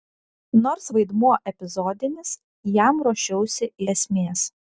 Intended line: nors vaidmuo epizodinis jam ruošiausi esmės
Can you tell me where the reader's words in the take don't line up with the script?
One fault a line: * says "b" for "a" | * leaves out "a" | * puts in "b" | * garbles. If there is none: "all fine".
all fine